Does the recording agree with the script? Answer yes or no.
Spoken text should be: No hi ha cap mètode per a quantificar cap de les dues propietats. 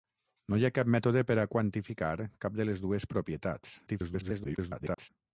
no